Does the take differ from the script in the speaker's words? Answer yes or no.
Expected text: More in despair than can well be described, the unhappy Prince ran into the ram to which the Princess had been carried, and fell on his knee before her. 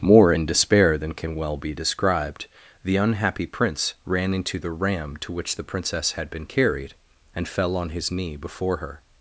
no